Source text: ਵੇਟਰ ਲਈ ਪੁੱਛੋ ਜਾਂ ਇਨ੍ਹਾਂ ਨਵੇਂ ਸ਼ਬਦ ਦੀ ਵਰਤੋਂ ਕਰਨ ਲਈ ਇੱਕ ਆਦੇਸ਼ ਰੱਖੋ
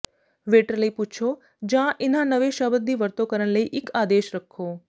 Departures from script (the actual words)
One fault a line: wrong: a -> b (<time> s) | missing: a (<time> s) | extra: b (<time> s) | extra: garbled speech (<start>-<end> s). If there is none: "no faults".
no faults